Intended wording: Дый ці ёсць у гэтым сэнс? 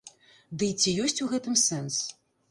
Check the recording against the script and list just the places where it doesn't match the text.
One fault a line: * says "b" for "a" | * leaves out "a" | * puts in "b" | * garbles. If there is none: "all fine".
all fine